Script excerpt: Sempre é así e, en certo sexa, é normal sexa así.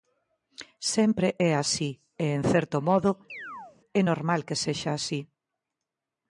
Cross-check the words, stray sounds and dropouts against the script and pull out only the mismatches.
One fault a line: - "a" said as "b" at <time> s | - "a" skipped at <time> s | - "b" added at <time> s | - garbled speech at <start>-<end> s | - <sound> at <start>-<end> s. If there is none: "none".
- "sexa" said as "modo" at 2.9 s
- chirp at 3.3-3.8 s
- "que" added at 4.5 s